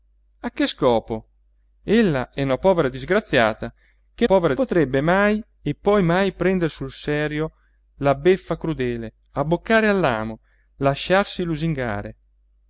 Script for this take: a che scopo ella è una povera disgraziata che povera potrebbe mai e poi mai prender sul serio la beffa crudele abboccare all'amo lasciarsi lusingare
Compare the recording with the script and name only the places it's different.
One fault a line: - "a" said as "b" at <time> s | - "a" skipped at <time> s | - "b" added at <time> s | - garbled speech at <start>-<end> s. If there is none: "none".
none